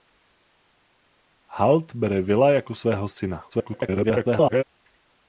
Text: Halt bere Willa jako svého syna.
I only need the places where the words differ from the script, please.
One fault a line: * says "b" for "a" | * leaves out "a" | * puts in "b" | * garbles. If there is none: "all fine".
* garbles